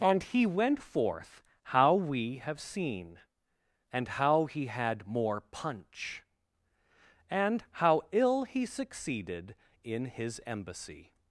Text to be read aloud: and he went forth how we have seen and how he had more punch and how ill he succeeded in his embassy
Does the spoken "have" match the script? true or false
true